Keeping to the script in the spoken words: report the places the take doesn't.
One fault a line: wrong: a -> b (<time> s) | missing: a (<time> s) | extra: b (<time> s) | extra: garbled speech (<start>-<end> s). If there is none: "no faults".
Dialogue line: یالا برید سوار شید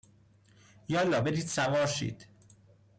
no faults